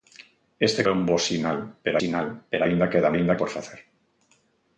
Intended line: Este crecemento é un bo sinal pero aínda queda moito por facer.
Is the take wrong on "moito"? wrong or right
wrong